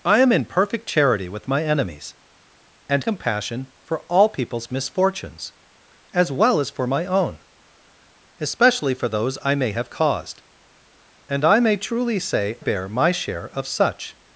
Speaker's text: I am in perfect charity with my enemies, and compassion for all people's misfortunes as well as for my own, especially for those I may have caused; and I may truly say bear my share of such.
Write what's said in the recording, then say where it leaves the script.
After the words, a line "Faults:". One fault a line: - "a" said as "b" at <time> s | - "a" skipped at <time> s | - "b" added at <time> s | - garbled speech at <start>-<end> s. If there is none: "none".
I am in perfect charity with my enemies, and compassion for all people's misfortunes as well as for my own, especially for those I may have caused; and I may truly say bear my share of such.
Faults:
none